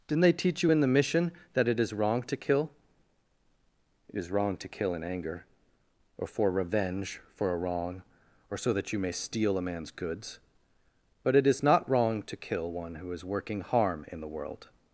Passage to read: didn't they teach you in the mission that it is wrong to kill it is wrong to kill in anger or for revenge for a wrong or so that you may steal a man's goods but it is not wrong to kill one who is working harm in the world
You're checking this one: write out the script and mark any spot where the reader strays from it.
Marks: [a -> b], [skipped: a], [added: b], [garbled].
didn't they teach you in the mission that it is wrong to kill it is wrong to kill in anger or for revenge for a wrong or so that you may steal a man's goods but it is not wrong to kill one who is working harm in the world